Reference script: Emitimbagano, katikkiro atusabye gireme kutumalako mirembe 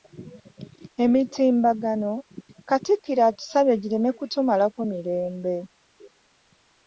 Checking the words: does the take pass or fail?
pass